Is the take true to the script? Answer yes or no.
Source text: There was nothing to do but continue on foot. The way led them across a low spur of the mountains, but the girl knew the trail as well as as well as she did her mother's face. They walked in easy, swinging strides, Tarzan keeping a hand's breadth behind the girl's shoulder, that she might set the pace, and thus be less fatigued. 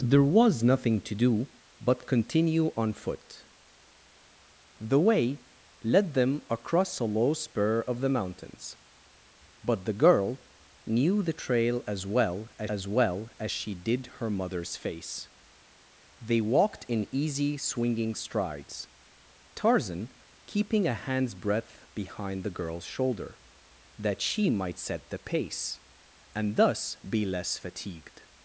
yes